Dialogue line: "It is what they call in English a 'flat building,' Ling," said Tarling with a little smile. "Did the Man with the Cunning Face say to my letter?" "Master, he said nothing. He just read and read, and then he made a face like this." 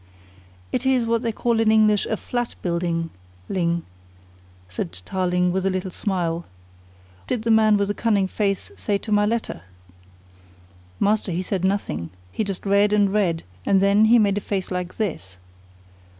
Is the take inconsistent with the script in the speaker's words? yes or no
no